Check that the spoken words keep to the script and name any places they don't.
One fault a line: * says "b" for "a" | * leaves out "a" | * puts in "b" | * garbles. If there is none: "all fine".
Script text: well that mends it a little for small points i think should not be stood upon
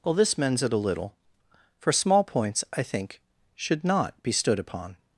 * says "this" for "that"